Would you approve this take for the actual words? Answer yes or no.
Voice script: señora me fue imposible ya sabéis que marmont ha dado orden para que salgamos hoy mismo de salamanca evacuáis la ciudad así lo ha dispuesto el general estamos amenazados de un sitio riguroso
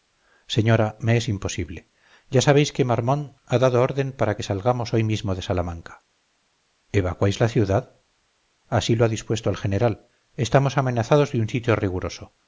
no